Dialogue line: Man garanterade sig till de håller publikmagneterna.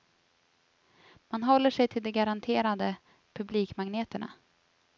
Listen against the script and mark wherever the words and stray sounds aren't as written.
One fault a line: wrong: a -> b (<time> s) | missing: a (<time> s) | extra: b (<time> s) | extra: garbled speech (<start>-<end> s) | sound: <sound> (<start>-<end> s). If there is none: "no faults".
wrong: garanterade -> håller (1.4 s)
wrong: håller -> garanterade (2.1 s)